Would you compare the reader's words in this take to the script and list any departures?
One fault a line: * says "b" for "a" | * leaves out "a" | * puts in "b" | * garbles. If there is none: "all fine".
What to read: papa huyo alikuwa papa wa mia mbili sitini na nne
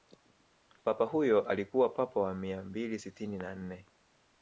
all fine